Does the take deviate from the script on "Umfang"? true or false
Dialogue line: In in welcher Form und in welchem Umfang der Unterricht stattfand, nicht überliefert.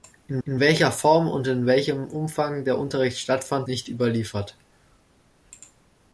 false